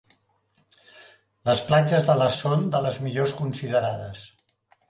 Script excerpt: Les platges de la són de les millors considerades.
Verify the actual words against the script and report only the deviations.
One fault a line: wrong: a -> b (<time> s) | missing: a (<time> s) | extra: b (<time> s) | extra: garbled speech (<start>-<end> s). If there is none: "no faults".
no faults